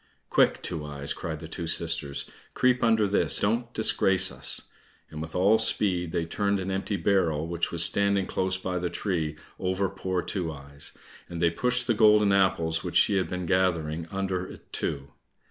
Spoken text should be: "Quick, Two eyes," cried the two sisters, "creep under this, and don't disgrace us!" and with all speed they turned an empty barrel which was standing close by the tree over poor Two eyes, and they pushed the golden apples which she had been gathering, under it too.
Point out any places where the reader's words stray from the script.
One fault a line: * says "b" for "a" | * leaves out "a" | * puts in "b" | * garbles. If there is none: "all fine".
* leaves out "and"